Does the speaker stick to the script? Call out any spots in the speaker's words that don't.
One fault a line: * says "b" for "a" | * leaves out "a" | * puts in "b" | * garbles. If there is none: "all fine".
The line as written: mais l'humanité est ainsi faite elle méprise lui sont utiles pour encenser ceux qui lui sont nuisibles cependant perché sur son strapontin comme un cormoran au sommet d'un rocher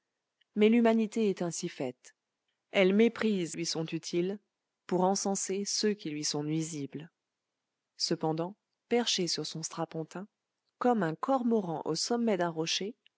all fine